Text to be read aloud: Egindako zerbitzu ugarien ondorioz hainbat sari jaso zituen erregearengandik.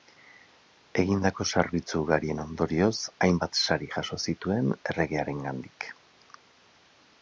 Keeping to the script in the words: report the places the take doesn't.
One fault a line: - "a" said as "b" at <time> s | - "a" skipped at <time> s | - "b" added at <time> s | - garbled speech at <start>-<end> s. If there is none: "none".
none